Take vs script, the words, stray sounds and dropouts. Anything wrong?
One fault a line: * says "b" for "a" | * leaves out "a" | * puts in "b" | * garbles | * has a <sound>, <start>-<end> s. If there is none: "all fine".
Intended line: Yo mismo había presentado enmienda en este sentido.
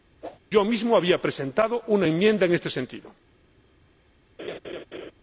* has a whoosh, 0.2-0.4 s
* puts in "una"
* has a laugh, 4.4-5.1 s